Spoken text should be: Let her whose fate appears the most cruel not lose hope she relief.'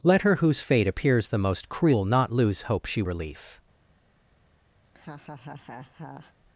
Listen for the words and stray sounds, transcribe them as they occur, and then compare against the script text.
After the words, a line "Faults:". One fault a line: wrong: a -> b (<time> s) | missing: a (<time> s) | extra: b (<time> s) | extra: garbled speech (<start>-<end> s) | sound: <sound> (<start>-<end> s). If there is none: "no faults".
Let her whose fate appears the most cruel not lose hope she relief.'
Faults:
sound: laugh (4.8-6.3 s)